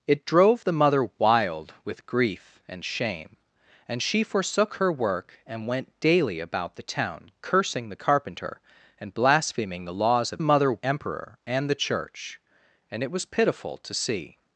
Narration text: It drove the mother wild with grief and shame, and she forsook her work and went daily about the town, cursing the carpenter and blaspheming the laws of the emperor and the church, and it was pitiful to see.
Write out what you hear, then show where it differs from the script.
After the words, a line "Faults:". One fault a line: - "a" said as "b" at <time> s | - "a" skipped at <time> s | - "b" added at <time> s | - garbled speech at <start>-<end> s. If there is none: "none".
It drove the mother wild with grief and shame, and she forsook her work and went daily about the town, cursing the carpenter and blaspheming the laws of mother emperor and the church, and it was pitiful to see.
Faults:
- "the" said as "mother" at 10.4 s